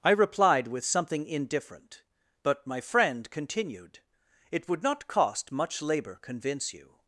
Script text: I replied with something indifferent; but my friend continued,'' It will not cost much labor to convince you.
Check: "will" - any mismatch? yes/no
yes